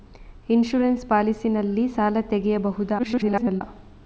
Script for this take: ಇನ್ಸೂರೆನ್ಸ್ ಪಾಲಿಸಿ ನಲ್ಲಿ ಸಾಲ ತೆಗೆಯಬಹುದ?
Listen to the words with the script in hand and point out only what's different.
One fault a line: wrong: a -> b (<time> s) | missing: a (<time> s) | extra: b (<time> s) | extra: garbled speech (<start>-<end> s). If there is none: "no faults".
extra: garbled speech (3.0-3.6 s)